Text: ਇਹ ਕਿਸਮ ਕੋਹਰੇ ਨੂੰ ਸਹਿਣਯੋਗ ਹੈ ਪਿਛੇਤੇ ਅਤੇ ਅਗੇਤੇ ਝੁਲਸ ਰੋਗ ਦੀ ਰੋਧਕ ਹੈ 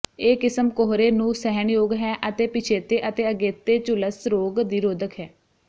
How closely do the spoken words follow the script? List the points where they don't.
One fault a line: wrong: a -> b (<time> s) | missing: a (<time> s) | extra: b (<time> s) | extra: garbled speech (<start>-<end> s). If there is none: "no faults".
extra: ਅਤੇ (2.3 s)